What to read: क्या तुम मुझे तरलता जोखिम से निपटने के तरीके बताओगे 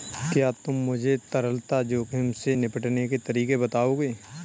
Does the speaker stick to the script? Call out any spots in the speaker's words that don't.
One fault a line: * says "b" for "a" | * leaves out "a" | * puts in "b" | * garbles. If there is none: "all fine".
all fine